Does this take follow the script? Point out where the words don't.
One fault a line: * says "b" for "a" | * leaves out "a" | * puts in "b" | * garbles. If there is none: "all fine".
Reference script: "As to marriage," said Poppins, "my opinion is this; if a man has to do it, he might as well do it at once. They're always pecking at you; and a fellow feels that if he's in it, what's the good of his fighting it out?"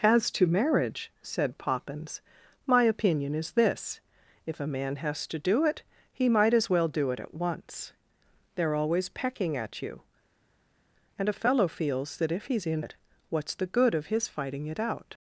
all fine